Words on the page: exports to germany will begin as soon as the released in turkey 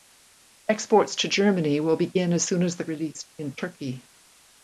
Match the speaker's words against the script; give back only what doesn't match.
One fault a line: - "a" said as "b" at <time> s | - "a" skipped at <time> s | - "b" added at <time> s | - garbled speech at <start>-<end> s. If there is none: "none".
none